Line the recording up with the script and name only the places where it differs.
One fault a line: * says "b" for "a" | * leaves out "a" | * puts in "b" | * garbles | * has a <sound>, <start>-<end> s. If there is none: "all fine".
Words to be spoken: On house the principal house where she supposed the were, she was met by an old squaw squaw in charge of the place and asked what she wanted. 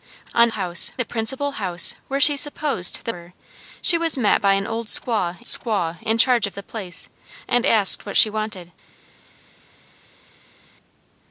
all fine